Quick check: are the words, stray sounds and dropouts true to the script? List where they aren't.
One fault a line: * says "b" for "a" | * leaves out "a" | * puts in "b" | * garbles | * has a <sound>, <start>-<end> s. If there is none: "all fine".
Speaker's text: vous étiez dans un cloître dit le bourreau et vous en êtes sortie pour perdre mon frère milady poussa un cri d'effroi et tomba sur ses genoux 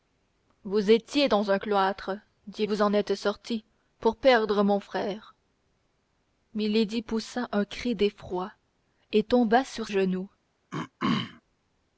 * leaves out "le bourreau et"
* leaves out "ses"
* has a throat clearing, 10.7-11.4 s